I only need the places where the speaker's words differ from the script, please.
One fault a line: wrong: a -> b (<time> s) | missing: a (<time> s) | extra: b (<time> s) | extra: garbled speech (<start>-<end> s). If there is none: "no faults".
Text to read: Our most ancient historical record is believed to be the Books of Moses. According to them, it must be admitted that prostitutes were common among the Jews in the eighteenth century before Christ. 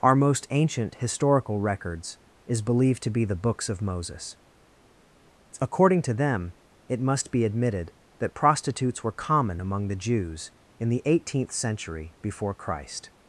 wrong: record -> records (1.6 s)